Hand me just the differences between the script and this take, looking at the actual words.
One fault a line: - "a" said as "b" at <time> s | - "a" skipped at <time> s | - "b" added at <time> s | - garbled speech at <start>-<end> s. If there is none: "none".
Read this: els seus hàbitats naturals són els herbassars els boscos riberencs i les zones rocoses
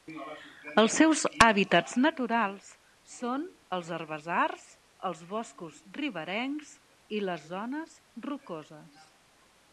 none